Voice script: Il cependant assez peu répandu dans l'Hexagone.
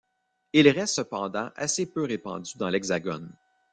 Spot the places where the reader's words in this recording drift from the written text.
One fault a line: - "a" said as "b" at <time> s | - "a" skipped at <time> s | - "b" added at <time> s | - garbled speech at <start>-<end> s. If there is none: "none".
- "reste" added at 0.7 s